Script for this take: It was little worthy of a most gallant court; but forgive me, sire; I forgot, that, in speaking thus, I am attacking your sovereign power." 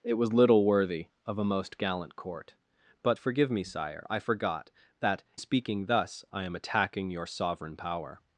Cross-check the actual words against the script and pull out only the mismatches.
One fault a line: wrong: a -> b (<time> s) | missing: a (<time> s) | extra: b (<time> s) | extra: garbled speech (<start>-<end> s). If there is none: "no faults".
missing: in (5.2 s)